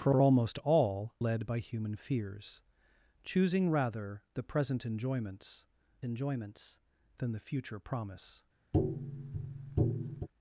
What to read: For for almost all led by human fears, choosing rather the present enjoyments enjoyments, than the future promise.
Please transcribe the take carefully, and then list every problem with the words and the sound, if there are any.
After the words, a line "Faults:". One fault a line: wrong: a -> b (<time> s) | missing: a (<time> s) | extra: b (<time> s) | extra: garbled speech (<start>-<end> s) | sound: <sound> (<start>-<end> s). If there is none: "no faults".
For for almost all led by human fears, choosing rather the present enjoyments enjoyments, than the future promise.
Faults:
sound: tap (8.7-10.3 s)